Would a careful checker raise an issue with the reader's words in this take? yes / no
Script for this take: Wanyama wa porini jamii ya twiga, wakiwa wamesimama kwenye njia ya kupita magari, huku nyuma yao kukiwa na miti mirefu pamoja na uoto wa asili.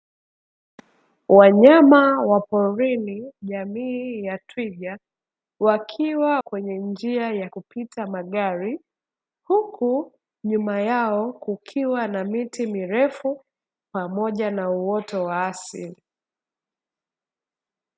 yes